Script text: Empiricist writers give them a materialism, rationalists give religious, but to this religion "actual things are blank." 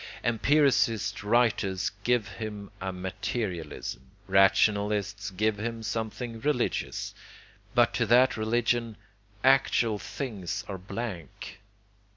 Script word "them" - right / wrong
wrong